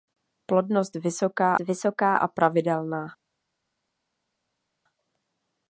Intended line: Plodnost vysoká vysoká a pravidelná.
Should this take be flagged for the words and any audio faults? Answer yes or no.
no